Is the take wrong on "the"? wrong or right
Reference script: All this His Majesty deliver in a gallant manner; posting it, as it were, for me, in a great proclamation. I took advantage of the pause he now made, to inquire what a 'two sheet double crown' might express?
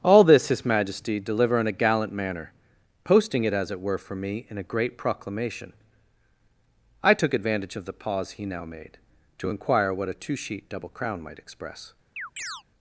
right